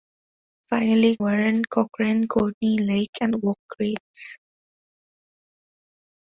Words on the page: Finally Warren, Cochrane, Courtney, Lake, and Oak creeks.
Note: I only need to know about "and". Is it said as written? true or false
true